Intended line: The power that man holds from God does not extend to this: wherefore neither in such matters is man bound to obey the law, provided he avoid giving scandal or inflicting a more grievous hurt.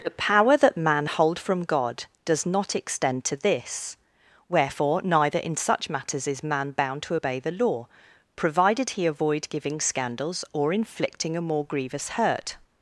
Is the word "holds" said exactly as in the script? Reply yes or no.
no